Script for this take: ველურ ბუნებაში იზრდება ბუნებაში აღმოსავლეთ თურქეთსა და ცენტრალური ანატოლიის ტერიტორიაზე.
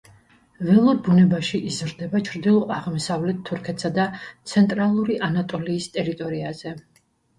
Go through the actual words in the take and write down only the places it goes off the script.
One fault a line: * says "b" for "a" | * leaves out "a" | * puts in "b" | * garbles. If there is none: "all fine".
* says "ჩრდილო" for "ბუნებაში"